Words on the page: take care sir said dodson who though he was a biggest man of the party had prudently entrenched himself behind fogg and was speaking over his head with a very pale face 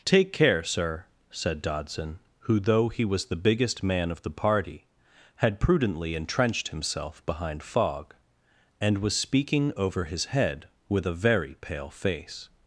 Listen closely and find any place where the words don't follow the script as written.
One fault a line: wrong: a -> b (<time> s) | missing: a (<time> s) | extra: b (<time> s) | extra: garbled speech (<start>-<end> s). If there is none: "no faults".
wrong: a -> the (3.3 s)